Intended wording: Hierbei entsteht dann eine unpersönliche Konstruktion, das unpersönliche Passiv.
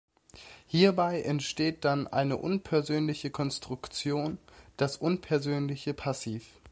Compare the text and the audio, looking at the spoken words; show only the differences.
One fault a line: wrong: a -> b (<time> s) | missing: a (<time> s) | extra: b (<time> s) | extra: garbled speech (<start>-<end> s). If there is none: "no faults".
no faults